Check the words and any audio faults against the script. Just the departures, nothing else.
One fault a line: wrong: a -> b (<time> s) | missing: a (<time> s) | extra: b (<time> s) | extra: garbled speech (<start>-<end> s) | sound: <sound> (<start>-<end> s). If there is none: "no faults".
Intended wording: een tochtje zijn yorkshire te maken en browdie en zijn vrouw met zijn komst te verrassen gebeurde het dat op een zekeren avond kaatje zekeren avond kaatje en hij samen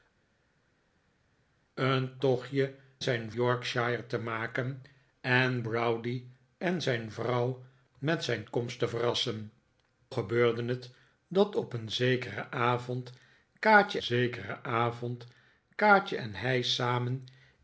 no faults